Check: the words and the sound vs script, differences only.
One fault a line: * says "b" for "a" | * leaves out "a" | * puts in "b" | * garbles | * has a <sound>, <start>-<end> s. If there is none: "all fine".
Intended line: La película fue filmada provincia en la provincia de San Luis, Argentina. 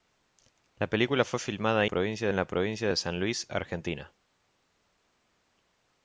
all fine